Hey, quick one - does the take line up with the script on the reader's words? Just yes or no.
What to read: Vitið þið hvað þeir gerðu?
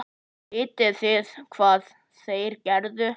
yes